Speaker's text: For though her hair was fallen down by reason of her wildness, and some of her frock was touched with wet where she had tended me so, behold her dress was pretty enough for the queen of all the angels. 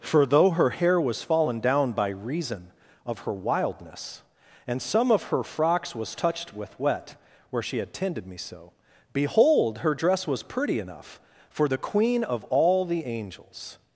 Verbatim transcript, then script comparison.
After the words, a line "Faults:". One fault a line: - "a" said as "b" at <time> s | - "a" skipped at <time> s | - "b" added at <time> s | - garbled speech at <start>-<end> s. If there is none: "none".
For though her hair was fallen down by reason of her wildness, and some of her frocks was touched with wet where she had tended me so, behold her dress was pretty enough for the queen of all the angels.
Faults:
- "frock" said as "frocks" at 5.4 s